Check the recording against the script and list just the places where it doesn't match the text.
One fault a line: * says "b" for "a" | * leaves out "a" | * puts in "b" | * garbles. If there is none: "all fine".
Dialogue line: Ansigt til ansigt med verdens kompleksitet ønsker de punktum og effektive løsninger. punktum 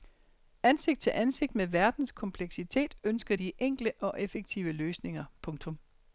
* says "enkle" for "punktum"